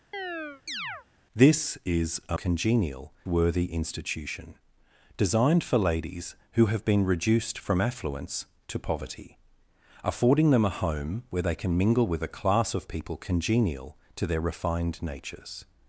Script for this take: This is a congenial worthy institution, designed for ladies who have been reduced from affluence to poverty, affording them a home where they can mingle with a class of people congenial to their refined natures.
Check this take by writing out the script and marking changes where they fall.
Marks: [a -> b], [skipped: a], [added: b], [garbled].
This is a congenial worthy institution, designed for ladies who have been reduced from affluence to poverty, affording them a home where they can mingle with a class of people congenial to their refined natures.